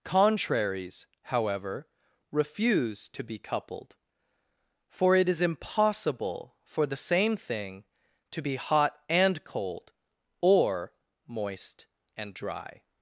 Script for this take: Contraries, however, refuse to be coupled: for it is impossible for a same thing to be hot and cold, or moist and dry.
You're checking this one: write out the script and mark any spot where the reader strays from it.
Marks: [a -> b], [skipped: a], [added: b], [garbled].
Contraries, however, refuse to be coupled: for it is impossible for [a -> the] same thing to be hot and cold, or moist and dry.